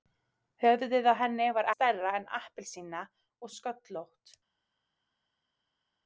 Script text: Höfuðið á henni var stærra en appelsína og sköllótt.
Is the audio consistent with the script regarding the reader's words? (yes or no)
yes